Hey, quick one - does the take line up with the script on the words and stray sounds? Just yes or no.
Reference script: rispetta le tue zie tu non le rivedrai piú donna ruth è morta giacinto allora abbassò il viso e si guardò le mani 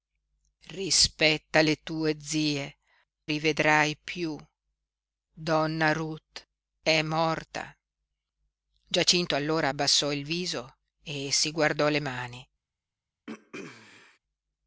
no